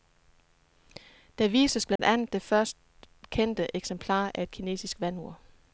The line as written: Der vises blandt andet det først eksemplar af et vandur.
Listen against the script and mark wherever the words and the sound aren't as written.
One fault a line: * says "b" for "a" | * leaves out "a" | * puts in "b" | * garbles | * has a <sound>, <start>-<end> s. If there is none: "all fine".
* has a dropout, 2.0-2.0 s
* puts in "kendte"
* puts in "kinesisk"